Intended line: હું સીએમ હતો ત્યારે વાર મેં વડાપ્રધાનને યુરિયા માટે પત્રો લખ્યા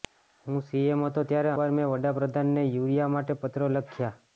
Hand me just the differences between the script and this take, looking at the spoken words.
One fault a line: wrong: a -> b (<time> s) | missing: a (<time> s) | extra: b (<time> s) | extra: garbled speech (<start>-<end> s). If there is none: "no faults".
no faults